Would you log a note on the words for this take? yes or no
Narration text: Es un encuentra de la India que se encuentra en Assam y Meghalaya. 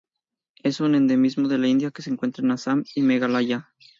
yes